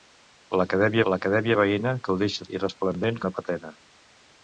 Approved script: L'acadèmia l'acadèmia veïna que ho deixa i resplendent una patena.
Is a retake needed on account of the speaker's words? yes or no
no